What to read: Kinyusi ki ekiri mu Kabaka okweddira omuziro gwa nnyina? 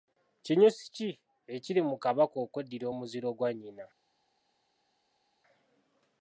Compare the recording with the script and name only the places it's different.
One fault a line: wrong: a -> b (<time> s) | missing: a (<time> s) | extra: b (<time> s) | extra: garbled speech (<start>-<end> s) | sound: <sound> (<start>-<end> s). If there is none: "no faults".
no faults